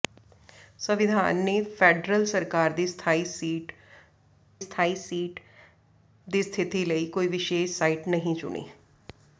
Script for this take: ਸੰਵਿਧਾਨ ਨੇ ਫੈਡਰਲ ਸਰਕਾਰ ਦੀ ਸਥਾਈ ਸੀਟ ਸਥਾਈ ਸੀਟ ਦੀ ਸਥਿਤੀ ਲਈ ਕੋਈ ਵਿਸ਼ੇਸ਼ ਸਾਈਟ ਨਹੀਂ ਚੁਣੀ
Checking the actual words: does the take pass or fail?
pass